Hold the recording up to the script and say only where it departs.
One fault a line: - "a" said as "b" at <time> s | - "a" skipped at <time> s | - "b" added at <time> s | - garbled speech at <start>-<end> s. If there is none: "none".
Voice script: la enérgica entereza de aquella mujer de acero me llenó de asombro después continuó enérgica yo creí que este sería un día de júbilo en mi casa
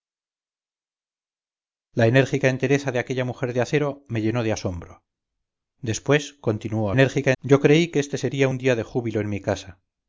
none